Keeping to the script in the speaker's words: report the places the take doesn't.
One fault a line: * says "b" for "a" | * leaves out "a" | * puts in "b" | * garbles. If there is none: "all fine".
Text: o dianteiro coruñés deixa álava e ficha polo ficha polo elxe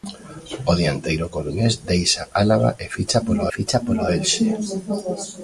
all fine